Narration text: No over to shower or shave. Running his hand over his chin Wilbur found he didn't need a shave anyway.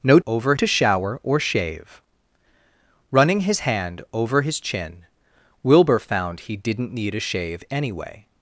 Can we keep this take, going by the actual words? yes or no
yes